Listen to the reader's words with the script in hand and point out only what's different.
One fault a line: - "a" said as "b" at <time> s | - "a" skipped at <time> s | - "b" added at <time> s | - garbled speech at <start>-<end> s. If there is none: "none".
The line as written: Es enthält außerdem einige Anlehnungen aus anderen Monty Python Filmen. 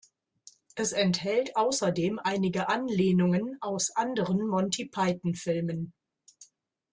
none